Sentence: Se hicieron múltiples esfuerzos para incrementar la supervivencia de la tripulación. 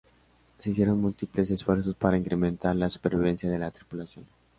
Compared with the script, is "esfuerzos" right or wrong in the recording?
right